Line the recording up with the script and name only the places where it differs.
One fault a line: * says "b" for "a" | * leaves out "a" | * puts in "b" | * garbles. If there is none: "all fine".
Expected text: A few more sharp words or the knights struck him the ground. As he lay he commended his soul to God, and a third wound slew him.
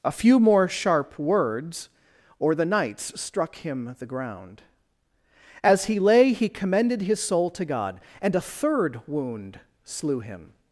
all fine